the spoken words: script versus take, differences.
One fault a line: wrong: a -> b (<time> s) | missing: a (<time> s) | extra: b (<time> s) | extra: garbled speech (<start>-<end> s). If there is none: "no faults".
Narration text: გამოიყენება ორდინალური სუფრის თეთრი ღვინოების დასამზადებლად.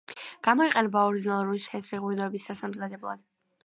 missing: სუფრის (1.6 s)